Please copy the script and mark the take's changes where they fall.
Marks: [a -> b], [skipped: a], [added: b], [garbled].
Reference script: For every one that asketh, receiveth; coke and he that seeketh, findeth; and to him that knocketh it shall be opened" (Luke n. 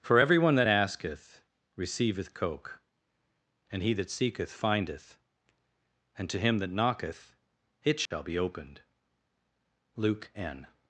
For every one that asketh, receiveth; coke and he that seeketh, findeth; and to him that knocketh it shall be opened" (Luke n.